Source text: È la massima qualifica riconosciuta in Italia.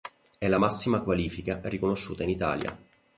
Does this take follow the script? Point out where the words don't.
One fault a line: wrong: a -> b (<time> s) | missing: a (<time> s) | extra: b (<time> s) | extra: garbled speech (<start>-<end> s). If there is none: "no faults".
no faults